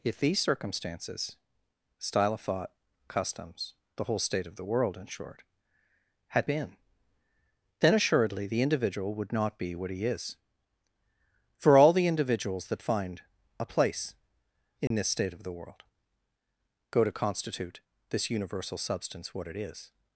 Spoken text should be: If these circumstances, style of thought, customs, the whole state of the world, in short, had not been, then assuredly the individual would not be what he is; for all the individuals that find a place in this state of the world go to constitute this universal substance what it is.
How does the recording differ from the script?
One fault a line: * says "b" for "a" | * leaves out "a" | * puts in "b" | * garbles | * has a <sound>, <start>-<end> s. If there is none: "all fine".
* leaves out "not"
* has a dropout, 14.9-14.9 s